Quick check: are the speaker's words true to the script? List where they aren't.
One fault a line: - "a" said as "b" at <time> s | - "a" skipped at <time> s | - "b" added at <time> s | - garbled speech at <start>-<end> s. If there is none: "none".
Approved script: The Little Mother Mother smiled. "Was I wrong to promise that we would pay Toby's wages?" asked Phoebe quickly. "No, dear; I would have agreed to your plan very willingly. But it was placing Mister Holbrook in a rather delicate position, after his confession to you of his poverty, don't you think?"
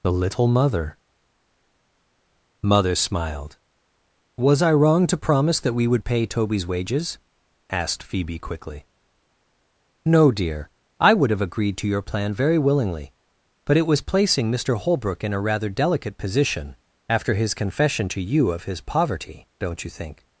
none